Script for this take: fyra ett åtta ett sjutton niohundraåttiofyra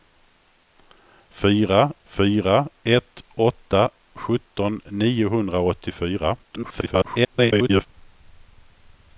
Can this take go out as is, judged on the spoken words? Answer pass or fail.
fail